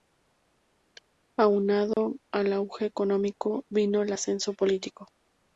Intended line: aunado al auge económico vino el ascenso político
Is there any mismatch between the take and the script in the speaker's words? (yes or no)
no